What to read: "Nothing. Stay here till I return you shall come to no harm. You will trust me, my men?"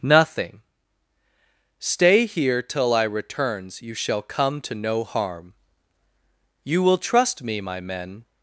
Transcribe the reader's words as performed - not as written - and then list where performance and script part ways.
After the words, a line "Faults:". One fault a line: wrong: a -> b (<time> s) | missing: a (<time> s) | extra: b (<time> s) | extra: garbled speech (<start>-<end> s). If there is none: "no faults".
"Nothing. Stay here till I returns you shall come to no harm. You will trust me, my men?"
Faults:
wrong: return -> returns (3.0 s)